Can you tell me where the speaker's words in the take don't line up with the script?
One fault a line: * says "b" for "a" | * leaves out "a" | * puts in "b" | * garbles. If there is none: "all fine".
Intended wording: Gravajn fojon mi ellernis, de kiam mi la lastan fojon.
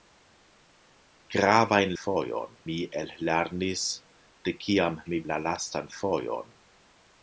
all fine